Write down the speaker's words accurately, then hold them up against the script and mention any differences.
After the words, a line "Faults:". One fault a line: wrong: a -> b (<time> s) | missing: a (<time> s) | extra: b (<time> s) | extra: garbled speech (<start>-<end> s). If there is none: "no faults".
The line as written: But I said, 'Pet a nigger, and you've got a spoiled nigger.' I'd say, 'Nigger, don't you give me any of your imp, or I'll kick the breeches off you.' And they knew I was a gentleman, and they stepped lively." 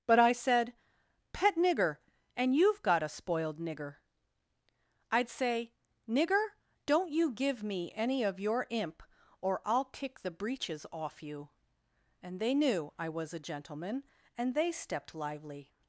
But I said, 'Pet nigger, and you've got a spoiled nigger.' I'd say, 'Nigger, don't you give me any of your imp, or I'll kick the breeches off you.' And they knew I was a gentleman, and they stepped lively."
Faults:
missing: a (1.6 s)